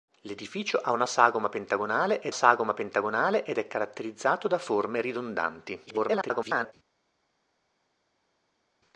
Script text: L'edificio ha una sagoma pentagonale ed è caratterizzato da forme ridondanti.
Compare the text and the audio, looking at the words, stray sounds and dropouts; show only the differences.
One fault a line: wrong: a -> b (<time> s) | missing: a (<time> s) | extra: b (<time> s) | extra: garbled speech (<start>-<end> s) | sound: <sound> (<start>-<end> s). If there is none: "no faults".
extra: sagoma pentagonale ed (2.3 s)
extra: garbled speech (5.9-6.7 s)